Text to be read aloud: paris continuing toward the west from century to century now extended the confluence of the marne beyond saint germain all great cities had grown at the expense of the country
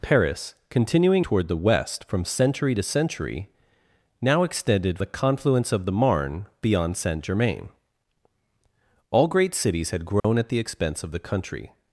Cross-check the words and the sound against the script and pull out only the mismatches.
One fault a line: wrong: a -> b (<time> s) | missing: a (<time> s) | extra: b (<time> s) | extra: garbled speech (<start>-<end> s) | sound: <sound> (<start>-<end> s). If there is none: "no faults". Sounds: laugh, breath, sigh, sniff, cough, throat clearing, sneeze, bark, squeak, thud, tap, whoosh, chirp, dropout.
sound: dropout (10.2-10.2 s)